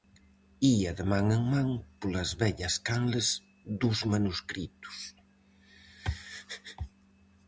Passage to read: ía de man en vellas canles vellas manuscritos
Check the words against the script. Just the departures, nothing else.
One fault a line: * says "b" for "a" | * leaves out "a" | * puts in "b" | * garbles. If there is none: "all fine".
* puts in "man polas"
* says "dos" for "vellas"